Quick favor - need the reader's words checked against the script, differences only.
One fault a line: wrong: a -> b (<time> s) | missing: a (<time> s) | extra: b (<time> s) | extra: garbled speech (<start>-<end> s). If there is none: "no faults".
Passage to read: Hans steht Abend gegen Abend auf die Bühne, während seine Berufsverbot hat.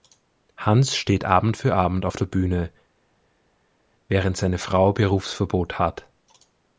wrong: gegen -> für (1.6 s)
wrong: die -> der (2.1 s)
extra: Frau (4.6 s)